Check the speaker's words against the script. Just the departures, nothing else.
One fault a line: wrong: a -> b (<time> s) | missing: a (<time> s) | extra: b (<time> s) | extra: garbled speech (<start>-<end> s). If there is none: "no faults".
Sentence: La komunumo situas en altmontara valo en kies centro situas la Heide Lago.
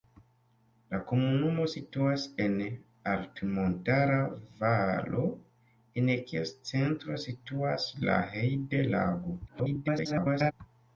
extra: garbled speech (9.5-10.5 s)